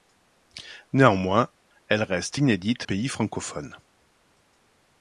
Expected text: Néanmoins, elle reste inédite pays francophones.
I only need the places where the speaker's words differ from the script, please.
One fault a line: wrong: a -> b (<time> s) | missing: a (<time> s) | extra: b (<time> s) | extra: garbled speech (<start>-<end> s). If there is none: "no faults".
no faults